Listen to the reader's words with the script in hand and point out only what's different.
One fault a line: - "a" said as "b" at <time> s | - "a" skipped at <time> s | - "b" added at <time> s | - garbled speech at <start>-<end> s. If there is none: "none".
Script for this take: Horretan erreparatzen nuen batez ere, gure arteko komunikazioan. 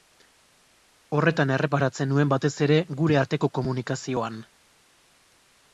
none